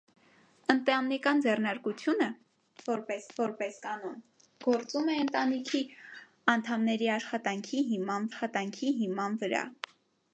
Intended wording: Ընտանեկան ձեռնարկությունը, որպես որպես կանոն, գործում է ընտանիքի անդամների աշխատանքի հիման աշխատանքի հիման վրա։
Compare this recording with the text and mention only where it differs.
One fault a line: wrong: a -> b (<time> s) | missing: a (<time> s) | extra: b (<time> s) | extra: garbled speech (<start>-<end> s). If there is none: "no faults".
no faults